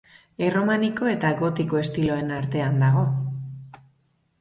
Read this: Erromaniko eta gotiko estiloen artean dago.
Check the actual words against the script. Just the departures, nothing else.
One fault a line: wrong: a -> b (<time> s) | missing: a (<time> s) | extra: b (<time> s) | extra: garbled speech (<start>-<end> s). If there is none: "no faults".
no faults